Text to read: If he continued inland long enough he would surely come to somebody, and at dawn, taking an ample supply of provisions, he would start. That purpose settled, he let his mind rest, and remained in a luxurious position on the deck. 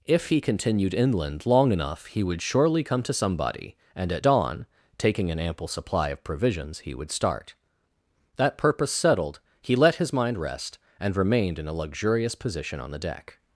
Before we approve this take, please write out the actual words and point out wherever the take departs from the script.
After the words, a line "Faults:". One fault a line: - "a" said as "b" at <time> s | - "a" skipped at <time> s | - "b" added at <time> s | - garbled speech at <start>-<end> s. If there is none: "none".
If he continued inland long enough he would surely come to somebody, and at dawn, taking an ample supply of provisions, he would start. That purpose settled, he let his mind rest, and remained in a luxurious position on the deck.
Faults:
none